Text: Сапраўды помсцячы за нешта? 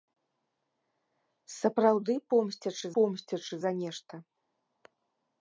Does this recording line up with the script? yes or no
no